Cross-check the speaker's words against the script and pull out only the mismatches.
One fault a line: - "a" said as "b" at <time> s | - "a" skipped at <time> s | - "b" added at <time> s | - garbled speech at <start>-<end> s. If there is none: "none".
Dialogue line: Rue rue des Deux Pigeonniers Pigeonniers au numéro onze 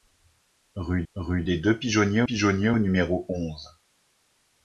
none